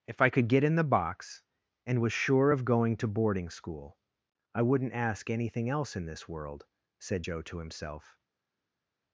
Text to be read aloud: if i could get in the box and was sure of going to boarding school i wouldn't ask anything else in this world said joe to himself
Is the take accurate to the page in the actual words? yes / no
yes